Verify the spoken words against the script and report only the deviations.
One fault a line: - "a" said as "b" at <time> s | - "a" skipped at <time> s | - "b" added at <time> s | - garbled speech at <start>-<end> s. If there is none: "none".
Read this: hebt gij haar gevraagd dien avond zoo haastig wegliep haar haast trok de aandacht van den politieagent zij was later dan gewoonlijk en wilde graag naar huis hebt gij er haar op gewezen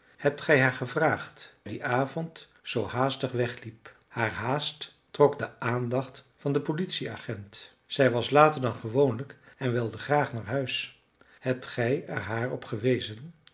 none